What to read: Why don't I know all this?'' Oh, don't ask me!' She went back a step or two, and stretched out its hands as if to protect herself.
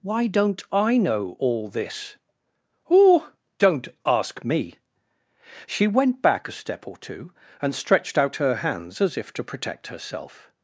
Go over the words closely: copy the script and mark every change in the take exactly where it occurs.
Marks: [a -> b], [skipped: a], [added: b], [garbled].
Why don't I know all this?'' Oh, don't ask me!' She went back a step or two, and stretched out [its -> her] hands as if to protect herself.